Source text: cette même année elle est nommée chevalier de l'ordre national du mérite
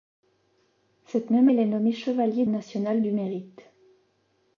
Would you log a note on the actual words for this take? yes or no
yes